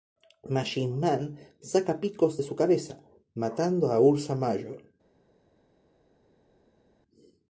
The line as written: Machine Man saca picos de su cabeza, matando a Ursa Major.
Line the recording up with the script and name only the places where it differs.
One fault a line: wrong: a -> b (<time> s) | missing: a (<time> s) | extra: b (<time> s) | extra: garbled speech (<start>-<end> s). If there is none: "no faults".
no faults